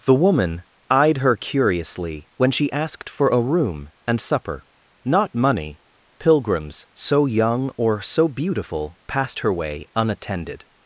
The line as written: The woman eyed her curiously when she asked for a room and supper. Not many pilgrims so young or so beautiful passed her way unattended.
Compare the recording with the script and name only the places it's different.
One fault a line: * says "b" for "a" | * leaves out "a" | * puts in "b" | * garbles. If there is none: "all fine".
* says "money" for "many"